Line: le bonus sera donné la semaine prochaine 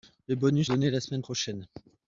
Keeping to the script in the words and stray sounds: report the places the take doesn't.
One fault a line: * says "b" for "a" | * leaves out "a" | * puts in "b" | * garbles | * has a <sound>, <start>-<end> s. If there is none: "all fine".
* leaves out "sera"